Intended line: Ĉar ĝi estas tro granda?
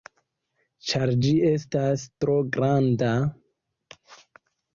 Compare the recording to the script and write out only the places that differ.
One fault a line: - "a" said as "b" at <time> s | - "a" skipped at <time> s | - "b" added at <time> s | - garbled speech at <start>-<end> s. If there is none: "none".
none